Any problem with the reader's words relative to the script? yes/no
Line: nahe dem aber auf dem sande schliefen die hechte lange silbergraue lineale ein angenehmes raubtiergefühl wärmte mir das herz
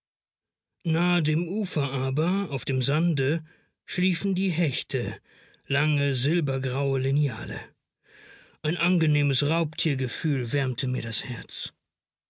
yes